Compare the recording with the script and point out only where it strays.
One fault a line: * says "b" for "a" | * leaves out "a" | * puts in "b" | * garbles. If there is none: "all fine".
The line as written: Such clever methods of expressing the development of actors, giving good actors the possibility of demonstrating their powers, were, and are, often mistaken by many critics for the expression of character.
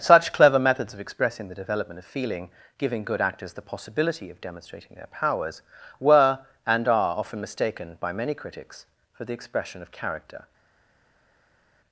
* says "feeling" for "actors"